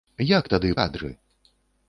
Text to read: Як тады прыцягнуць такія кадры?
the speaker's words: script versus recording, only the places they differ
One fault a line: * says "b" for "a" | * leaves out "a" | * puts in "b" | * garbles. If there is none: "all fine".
* leaves out "прыцягнуць такія"